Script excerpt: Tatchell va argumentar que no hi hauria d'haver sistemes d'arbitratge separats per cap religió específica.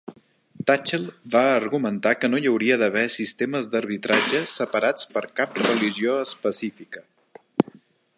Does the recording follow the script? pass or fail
pass